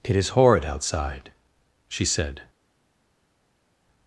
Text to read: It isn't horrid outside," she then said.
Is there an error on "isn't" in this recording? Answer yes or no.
yes